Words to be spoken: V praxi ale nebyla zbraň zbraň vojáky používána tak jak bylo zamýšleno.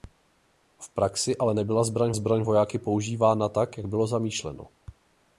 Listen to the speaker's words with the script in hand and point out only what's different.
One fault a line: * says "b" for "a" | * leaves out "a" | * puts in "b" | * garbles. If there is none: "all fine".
all fine